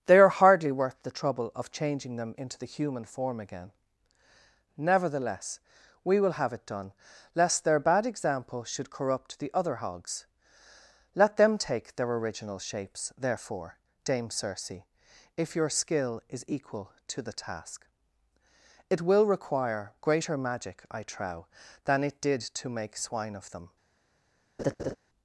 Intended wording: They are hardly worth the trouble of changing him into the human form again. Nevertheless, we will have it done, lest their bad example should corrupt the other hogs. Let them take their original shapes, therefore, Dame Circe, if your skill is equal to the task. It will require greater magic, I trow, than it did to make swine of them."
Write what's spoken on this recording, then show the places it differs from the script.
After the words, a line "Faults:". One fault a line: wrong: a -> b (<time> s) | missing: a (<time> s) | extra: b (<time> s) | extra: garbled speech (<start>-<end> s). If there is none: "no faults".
They are hardly worth the trouble of changing them into the human form again. Nevertheless, we will have it done, lest their bad example should corrupt the other hogs. Let them take their original shapes, therefore, Dame Circe, if your skill is equal to the task. It will require greater magic, I trow, than it did to make swine of them."
Faults:
wrong: him -> them (2.1 s)